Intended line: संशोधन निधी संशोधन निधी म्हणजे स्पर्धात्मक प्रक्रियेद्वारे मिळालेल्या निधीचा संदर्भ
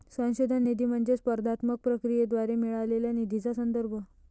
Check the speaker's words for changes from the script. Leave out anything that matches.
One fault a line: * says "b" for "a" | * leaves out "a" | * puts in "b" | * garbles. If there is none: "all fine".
* leaves out "संशोधन निधी"